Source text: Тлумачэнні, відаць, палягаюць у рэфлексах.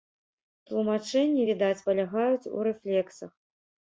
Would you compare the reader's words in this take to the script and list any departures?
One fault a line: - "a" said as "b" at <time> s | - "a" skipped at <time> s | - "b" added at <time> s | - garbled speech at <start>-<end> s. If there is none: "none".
none